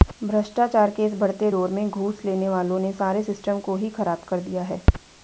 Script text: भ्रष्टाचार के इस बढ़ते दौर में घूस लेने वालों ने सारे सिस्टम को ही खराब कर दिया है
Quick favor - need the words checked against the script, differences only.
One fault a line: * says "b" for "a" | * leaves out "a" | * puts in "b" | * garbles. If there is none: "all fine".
all fine